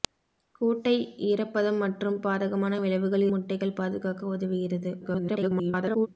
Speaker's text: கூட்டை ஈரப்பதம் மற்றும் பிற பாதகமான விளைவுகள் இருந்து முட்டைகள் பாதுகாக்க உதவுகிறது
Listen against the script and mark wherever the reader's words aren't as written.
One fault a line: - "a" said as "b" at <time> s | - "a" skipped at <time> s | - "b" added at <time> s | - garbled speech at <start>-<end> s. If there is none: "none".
- "பிற" skipped at 2.2 s
- "இருந்து" skipped at 3.3 s
- garbled speech at 5.0-6.1 s